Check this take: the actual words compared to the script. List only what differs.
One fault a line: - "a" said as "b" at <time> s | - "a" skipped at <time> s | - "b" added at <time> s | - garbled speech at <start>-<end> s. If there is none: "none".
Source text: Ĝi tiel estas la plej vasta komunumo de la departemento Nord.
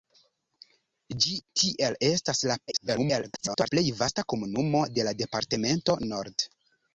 - garbled speech at 2.7-3.7 s